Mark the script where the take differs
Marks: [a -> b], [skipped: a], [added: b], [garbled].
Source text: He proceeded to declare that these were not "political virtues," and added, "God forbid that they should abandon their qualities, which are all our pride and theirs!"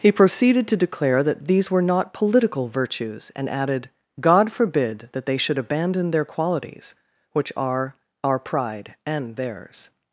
He proceeded to declare that these were not "political virtues," and added, "God forbid that they should abandon their qualities, which are [skipped: all] our pride and theirs!"